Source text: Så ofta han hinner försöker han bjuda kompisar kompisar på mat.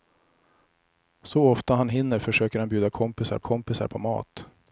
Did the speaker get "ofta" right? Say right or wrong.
right